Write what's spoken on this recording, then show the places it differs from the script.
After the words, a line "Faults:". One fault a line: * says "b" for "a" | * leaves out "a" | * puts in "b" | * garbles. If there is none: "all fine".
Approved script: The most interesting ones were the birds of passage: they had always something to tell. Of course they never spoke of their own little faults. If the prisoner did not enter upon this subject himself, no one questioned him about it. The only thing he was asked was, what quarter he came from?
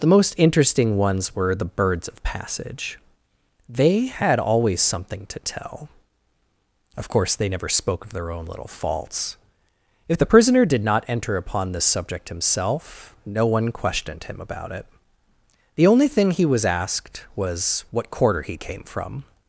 The most interesting ones were the birds of passage: they had always something to tell. Of course they never spoke of their own little faults. If the prisoner did not enter upon this subject himself, no one questioned him about it. The only thing he was asked was, what quarter he came from?
Faults:
all fine